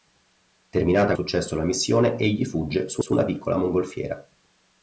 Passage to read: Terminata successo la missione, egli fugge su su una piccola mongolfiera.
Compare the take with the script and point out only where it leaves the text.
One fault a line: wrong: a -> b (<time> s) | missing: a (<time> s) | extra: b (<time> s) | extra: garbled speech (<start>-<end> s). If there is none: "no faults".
no faults